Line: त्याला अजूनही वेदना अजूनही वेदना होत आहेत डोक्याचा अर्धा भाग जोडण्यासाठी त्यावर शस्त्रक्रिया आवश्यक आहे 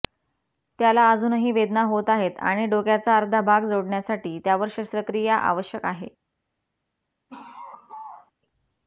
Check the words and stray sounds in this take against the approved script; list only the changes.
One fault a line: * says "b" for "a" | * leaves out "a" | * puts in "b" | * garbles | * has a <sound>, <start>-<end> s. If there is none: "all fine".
* leaves out "अजूनही वेदना"
* puts in "आणि"
* has a laugh, 7.3-8.3 s